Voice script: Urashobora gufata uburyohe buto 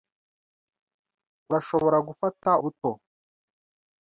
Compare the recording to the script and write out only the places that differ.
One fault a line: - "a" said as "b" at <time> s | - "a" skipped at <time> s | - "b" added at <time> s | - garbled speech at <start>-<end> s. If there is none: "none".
- "uburyohe" skipped at 2.5 s